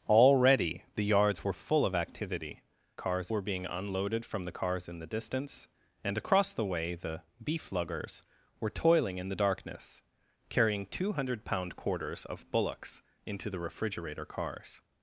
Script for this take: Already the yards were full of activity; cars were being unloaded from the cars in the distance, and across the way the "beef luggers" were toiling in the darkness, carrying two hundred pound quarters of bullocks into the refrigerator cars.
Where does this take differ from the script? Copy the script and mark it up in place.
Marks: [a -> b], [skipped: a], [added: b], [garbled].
Already the yards were full of activity; cars were being unloaded from the cars in the distance, and across the way the "beef luggers" were toiling in the darkness, carrying two hundred pound quarters of bullocks into the refrigerator cars.